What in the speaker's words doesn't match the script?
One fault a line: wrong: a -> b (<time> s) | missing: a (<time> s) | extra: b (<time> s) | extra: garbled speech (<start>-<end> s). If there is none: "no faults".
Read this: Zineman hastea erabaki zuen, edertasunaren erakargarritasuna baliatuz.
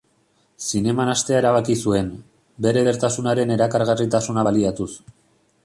extra: bere (2.7 s)